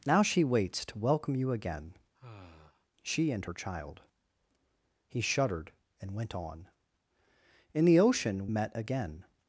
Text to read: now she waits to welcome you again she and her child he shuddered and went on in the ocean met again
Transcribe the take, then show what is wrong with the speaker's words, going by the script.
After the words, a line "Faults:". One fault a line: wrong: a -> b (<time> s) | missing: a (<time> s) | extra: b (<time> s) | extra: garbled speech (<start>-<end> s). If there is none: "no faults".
now she waits to welcome you again she and her child he shuddered and went on in the ocean met again
Faults:
no faults